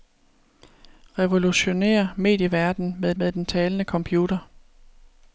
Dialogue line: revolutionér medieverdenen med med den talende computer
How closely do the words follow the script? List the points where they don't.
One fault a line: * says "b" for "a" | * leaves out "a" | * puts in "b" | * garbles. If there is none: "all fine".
all fine